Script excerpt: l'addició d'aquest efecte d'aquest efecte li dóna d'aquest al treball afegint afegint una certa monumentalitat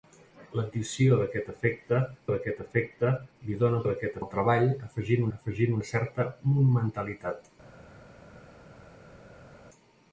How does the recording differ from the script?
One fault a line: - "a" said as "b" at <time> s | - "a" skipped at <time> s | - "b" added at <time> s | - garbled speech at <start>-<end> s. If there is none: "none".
none